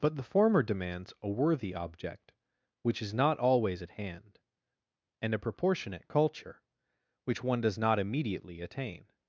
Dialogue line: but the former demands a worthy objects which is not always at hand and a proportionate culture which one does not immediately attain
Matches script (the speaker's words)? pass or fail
fail